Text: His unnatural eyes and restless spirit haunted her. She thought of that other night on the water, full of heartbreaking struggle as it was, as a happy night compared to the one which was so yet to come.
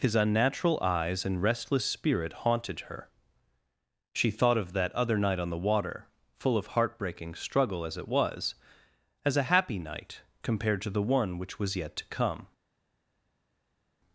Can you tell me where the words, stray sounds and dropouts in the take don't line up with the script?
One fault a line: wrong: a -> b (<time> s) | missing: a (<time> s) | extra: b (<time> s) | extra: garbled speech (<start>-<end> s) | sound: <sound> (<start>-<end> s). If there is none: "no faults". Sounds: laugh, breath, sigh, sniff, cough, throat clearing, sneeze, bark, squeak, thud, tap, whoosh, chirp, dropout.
missing: so (11.7 s)